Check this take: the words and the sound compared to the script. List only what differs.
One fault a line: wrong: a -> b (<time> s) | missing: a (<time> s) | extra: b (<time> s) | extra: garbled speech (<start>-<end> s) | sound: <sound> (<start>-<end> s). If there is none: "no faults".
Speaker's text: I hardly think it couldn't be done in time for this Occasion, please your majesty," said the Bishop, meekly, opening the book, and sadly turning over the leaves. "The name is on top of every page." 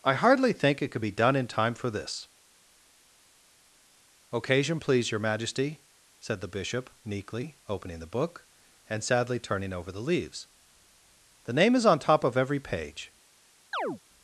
wrong: couldn't -> could (0.9 s)
sound: chirp (13.7-14.0 s)